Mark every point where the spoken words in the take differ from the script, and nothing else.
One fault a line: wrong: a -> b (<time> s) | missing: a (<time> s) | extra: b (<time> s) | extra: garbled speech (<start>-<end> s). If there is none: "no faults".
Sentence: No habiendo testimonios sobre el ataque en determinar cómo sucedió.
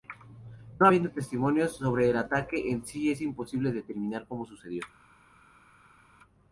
extra: sí es imposible (2.9 s)